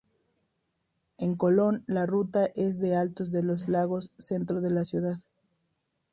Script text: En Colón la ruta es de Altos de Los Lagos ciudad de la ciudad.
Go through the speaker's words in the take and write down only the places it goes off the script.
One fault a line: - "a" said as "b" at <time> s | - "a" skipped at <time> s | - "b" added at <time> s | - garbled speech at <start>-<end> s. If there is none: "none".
- "ciudad" said as "centro" at 4.2 s